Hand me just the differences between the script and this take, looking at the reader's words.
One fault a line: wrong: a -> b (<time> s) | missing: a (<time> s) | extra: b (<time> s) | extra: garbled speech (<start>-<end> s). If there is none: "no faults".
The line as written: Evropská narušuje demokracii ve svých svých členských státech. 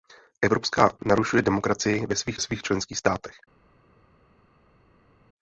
no faults